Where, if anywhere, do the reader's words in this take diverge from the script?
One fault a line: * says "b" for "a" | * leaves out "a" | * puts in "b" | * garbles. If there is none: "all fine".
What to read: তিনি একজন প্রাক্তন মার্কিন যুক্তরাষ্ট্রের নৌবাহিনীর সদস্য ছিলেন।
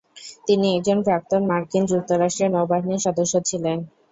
all fine